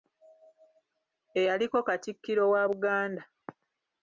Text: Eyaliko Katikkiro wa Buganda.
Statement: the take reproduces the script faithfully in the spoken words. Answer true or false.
true